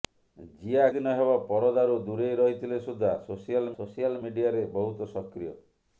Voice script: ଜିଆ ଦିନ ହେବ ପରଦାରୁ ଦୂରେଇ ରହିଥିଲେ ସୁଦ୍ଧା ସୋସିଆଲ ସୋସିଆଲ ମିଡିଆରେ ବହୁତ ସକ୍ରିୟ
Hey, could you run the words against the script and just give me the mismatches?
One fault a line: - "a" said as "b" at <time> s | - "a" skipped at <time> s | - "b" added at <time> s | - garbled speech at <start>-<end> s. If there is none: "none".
none